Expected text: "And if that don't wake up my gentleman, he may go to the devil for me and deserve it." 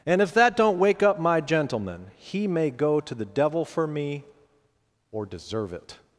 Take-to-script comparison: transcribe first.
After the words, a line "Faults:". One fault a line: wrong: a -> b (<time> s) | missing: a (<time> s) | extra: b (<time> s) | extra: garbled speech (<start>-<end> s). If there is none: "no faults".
"And if that don't wake up my gentleman, he may go to the devil for me or deserve it."
Faults:
wrong: and -> or (5.1 s)